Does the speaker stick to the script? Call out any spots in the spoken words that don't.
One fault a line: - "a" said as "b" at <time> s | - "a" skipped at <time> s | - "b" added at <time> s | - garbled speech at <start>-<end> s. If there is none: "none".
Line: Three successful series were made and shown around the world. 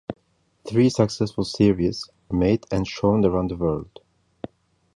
- "were" skipped at 2.1 s